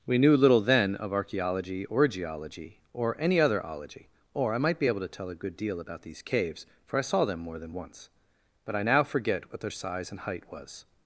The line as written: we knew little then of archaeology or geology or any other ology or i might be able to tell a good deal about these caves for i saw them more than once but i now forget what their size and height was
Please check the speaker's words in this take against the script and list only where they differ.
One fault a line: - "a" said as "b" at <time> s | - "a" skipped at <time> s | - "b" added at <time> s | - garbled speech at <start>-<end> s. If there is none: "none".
none